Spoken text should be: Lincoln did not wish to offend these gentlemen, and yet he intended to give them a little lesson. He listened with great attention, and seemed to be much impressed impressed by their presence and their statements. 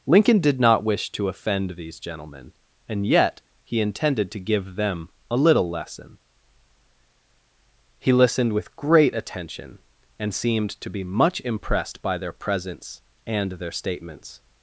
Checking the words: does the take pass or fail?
fail